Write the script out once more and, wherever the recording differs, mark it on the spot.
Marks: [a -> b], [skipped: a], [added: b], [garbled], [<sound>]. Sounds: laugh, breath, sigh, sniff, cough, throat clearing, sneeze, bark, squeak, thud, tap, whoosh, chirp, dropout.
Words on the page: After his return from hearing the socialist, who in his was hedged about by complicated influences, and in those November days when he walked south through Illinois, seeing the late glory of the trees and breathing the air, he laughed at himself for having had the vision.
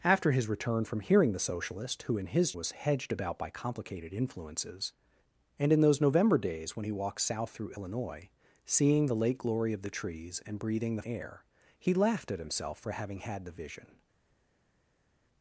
After his return from hearing the socialist, who in his was hedged about by complicated influences, and in those November days when he walked south through Illinois, seeing the late glory of the trees and breathing the air, he laughed at himself for having had the vision.